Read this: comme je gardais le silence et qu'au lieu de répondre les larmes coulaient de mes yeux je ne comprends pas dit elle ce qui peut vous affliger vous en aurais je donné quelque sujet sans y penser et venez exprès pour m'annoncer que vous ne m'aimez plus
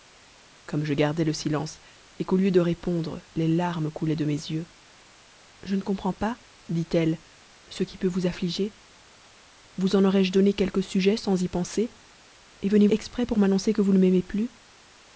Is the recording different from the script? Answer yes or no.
no